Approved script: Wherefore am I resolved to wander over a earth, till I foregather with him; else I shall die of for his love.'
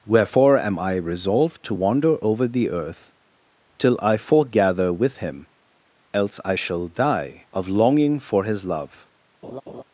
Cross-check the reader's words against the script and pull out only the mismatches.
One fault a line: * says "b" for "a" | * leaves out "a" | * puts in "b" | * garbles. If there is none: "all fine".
* says "the" for "a"
* puts in "longing"